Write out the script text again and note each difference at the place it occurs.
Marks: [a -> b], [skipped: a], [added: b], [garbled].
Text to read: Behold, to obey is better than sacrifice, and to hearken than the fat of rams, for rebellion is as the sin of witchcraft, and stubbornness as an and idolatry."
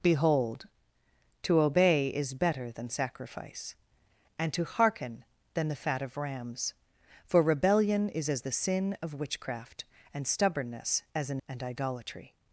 Behold, to obey is better than sacrifice, and to hearken than the fat of rams, for rebellion is as the sin of witchcraft, and stubbornness as an and idolatry."